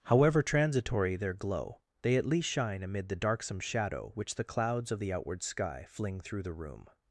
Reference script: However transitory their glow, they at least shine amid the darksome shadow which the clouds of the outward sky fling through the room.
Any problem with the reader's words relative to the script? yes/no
no